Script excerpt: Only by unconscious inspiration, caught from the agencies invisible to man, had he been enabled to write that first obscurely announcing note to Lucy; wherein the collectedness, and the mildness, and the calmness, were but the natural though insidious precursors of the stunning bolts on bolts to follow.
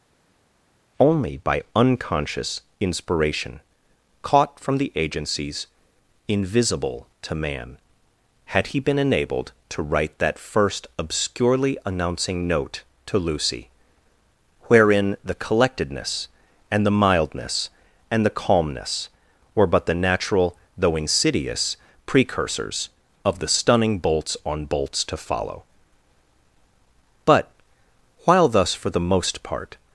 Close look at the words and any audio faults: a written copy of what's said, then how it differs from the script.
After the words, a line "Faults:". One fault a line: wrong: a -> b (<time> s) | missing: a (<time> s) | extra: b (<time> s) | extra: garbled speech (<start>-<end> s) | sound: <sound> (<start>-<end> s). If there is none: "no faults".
Only by unconscious inspiration, caught from the agencies invisible to man, had he been enabled to write that first obscurely announcing note to Lucy; wherein the collectedness, and the mildness, and the calmness, were but the natural though insidious precursors of the stunning bolts on bolts to follow. But, while thus, for the most part
Faults:
extra: But while thus for the most part (27.3 s)